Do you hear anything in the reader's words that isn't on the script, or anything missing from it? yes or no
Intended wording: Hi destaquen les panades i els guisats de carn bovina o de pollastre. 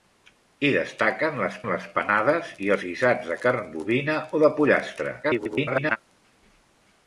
yes